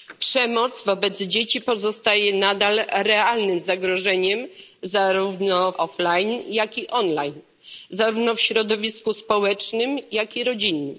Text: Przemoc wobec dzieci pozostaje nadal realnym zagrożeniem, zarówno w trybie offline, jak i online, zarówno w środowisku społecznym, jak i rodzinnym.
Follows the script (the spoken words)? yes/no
no